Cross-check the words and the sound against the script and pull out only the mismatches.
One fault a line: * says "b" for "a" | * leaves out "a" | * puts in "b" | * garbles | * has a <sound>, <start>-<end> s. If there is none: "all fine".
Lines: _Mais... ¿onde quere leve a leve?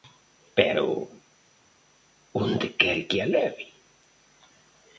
* says "Pero" for "Mais"
* says "que" for "leve"